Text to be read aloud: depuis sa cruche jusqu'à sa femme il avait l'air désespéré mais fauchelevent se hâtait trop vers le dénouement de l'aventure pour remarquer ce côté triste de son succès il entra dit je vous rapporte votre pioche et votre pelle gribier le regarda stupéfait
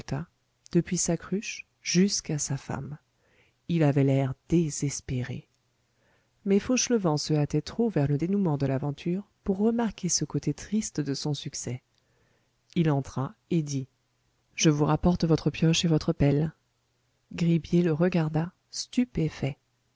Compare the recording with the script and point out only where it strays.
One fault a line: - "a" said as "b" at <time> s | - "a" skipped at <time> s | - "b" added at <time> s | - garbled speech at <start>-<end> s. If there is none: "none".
- "et" added at 13.5 s